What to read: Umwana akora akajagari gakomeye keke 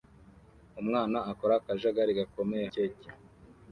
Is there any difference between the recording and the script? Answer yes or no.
no